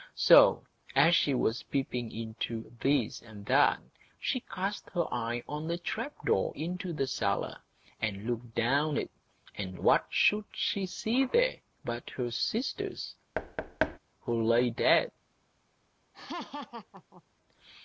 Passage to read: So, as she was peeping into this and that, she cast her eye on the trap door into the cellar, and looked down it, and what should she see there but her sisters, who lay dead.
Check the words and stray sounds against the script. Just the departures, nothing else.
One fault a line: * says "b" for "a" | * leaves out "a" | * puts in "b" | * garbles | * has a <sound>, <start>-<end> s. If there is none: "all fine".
* has a thud, 13.3-14.0 s
* has a laugh, 16.1-17.2 s